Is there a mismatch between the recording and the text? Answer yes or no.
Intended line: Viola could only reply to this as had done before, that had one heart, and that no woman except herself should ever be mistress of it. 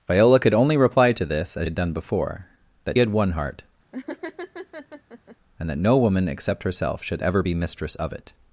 no